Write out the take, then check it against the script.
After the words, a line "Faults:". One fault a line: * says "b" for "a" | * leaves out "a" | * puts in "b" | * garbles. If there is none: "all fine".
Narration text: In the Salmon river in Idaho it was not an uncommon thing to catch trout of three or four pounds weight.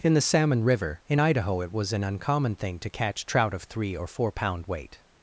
In the Salmon river in Idaho it was an uncommon thing to catch trout of three or four pound weight.
Faults:
* leaves out "not"
* says "pound" for "pounds"